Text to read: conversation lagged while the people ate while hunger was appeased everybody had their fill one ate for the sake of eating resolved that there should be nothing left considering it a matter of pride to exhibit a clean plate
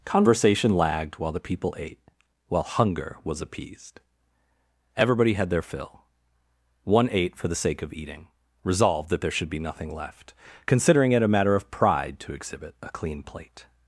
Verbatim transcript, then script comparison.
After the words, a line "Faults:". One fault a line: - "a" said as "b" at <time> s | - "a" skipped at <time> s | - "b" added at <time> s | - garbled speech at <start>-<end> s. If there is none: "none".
conversation lagged while the people ate while hunger was appeased everybody had their fill one ate for the sake of eating resolved that there should be nothing left considering it a matter of pride to exhibit a clean plate
Faults:
none